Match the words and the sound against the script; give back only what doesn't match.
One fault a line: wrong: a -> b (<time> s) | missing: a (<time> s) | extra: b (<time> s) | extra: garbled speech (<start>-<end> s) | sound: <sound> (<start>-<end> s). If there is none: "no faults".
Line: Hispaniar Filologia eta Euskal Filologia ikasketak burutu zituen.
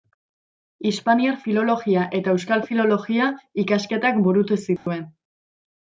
sound: dropout (4.8-4.9 s)